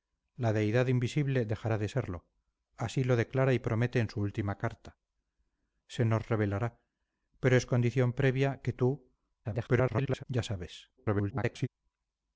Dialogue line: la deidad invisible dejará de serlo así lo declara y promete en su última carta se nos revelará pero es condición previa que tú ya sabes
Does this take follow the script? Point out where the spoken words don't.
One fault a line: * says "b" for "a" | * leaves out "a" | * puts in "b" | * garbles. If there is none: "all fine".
* garbles
* garbles